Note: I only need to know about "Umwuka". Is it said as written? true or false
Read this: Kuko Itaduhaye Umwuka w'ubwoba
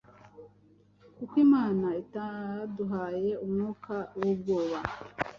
true